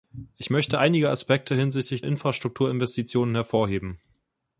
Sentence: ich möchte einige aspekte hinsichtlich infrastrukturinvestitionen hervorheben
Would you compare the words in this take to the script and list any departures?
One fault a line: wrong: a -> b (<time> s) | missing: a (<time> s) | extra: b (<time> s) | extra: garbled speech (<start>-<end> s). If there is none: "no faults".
no faults